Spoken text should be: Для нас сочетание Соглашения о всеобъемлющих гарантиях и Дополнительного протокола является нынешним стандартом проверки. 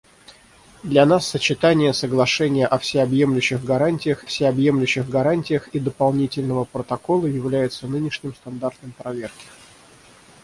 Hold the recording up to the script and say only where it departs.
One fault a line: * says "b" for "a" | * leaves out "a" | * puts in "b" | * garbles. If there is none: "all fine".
* puts in "всеобъемлющих гарантиях"